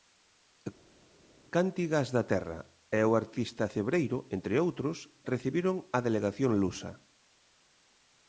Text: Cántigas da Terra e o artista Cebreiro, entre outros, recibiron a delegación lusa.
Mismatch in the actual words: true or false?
false